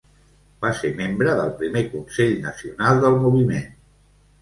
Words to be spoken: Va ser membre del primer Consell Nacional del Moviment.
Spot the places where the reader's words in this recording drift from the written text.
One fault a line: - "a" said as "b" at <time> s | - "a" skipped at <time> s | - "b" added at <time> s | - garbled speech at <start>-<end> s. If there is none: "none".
none